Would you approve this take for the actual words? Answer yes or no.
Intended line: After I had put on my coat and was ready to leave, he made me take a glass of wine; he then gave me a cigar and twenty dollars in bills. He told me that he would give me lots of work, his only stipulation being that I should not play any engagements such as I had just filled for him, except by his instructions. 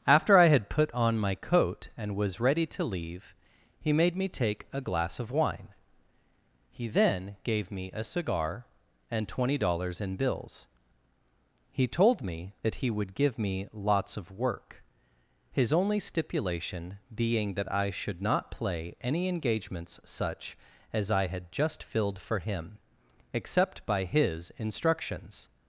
yes